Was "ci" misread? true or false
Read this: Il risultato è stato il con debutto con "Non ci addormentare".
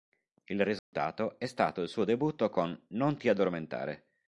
true